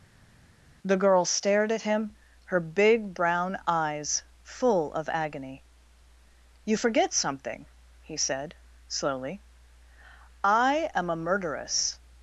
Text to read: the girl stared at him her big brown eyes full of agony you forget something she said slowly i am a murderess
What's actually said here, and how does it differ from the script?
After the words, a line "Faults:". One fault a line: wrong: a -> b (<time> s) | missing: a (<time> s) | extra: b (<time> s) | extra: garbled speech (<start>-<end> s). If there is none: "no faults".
the girl stared at him her big brown eyes full of agony you forget something he said slowly i am a murderess
Faults:
wrong: she -> he (8.0 s)